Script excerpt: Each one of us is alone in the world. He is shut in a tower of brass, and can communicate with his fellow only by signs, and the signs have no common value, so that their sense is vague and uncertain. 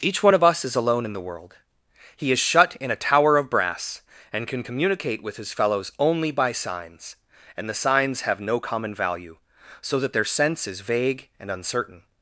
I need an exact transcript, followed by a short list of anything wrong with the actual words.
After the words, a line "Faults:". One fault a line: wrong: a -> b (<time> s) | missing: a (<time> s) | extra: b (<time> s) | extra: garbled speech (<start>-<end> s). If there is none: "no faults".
Each one of us is alone in the world. He is shut in a tower of brass, and can communicate with his fellows only by signs, and the signs have no common value, so that their sense is vague and uncertain.
Faults:
wrong: fellow -> fellows (5.5 s)